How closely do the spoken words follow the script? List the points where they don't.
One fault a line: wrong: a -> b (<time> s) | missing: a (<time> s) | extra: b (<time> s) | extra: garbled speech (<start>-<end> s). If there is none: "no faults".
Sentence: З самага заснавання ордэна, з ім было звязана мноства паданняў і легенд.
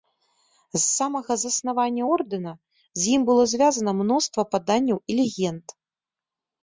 no faults